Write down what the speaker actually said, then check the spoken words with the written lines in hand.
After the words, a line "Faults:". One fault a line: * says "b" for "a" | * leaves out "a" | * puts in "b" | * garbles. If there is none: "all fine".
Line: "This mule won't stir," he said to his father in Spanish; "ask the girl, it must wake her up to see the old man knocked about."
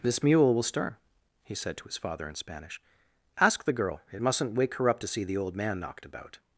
"This mule will stir," he said to his father in Spanish; "ask the girl, it mustn't wake her up to see the old man knocked about."
Faults:
* says "will" for "won't"
* says "mustn't" for "must"